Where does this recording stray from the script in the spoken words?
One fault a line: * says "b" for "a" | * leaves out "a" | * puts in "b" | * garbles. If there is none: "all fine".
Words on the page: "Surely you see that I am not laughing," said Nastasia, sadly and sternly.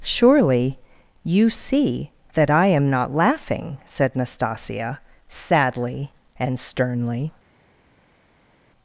all fine